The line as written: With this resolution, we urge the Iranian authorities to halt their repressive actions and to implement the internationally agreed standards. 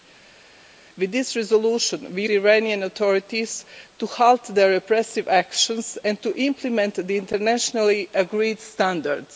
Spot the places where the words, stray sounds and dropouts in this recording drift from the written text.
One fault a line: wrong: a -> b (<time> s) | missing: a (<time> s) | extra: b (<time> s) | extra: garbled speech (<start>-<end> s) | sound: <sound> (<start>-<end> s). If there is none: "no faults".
missing: urge (2.3 s)